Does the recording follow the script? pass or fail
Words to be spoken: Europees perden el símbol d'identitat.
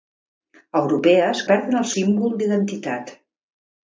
pass